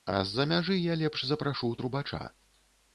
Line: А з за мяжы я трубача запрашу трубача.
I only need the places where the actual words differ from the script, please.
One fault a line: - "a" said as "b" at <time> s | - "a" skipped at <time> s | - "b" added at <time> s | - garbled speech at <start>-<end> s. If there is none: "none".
- "трубача" said as "лепш" at 1.0 s